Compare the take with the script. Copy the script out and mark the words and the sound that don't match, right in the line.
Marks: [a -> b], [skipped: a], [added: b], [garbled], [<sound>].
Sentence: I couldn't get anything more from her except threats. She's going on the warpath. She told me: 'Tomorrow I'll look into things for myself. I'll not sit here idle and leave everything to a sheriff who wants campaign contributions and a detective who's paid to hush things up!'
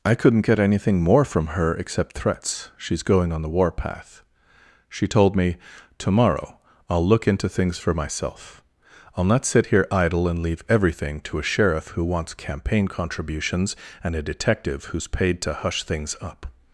I couldn't get anything more from her except threats. She's going on the warpath. She told me: 'Tomorrow I'll look into things for myself. I'll not sit here idle and leave everything to a sheriff who wants campaign contributions and a detective who's paid to hush things up!'